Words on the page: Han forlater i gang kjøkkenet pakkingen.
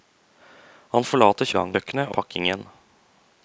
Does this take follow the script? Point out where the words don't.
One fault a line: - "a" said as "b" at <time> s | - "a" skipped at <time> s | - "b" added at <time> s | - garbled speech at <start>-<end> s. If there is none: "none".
none